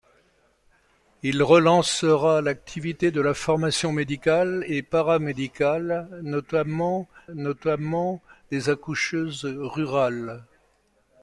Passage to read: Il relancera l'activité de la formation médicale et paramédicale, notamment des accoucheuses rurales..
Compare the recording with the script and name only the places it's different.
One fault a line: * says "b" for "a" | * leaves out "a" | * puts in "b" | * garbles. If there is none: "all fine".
* puts in "notamment"